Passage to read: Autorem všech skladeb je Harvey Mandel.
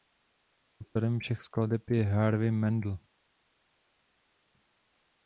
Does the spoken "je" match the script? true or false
true